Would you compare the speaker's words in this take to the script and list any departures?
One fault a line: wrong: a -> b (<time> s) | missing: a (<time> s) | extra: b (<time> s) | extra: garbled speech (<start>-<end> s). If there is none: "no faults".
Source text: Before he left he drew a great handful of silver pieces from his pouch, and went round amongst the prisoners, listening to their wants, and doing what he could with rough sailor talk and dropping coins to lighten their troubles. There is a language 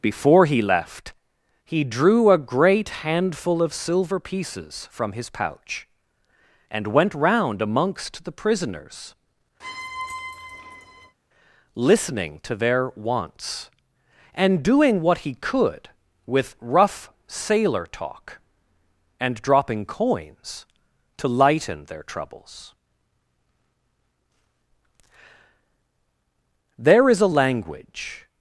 no faults